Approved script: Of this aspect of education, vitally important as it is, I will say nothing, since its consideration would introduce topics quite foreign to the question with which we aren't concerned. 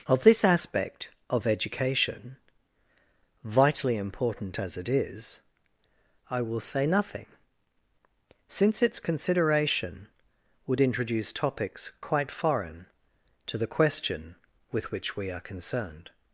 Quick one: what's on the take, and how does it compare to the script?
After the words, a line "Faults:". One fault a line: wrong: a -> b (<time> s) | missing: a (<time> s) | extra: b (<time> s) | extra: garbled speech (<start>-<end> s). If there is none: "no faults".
Of this aspect of education, vitally important as it is, I will say nothing, since its consideration would introduce topics quite foreign to the question with which we are concerned.
Faults:
wrong: aren't -> are (15.3 s)